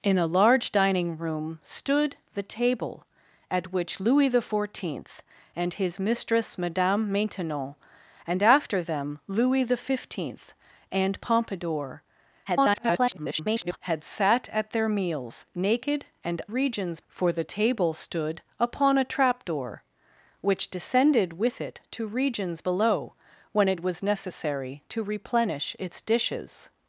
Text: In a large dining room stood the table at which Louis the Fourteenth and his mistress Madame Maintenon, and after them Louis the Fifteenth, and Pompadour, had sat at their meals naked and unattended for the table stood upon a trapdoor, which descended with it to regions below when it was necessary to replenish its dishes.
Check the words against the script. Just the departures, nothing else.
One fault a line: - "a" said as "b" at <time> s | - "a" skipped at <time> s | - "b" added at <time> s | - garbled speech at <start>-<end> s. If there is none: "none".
- garbled speech at 12.4-13.8 s
- "unattended" said as "regions" at 16.4 s